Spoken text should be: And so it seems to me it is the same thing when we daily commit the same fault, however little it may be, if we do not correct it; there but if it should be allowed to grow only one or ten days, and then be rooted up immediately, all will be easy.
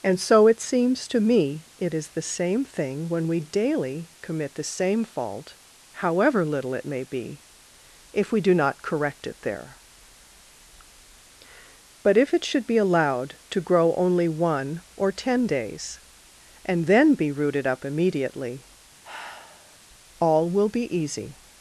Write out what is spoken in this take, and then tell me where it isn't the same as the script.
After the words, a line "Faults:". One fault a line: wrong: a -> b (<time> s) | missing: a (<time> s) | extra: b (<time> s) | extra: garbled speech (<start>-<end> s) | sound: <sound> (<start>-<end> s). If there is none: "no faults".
And so it seems to me it is the same thing when we daily commit the same fault, however little it may be, if we do not correct it; there but if it should be allowed to grow only one or ten days, and then be rooted up immediately, all will be easy.
Faults:
sound: sigh (19.0-19.8 s)